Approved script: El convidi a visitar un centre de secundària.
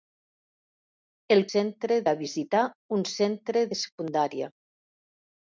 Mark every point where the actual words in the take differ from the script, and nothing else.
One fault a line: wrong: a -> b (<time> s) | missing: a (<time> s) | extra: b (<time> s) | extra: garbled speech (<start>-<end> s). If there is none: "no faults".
wrong: convidi -> centre (1.5 s)